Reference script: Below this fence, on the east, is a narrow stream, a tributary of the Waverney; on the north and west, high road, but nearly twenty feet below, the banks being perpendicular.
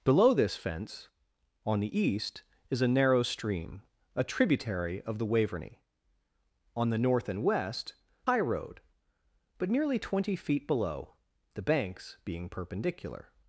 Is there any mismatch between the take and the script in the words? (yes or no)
no